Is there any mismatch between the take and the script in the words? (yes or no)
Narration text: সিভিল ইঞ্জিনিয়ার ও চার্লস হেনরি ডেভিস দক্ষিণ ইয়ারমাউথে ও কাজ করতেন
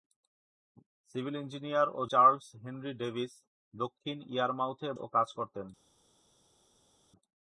no